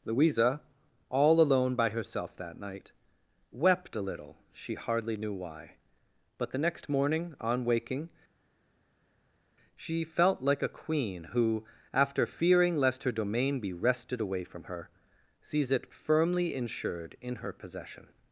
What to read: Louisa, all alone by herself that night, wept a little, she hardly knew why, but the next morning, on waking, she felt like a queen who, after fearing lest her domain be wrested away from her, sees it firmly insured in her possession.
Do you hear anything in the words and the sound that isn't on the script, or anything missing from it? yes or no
no